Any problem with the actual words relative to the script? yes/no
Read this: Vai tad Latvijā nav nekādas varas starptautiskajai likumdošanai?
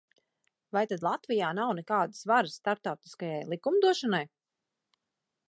no